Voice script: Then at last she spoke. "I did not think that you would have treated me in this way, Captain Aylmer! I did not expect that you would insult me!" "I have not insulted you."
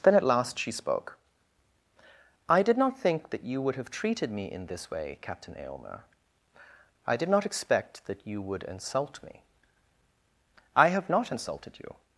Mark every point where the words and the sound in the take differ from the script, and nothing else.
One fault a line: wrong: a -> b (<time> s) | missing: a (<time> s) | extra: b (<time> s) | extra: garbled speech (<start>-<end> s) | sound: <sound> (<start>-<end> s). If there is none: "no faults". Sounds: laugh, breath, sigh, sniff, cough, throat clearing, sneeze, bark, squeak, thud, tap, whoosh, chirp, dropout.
no faults